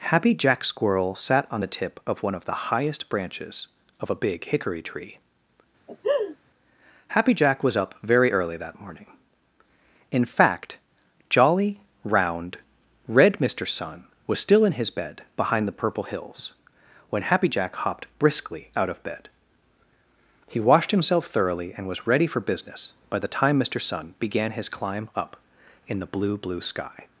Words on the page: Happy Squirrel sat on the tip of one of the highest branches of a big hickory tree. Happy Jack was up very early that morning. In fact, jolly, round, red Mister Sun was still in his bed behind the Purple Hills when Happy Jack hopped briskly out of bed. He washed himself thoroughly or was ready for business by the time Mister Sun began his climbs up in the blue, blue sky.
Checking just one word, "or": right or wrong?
wrong